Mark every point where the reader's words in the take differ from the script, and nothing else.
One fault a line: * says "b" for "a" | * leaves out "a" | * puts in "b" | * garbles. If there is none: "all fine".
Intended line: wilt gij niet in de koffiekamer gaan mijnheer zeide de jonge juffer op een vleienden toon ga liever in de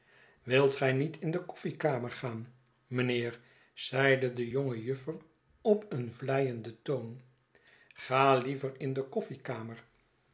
all fine